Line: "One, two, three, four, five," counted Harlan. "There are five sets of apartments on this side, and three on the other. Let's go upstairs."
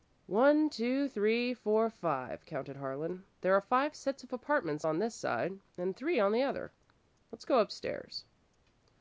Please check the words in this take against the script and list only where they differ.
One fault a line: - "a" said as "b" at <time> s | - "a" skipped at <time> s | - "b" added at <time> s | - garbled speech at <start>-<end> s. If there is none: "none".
none